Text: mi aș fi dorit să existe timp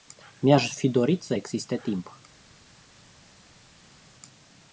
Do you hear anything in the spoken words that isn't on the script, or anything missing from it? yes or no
no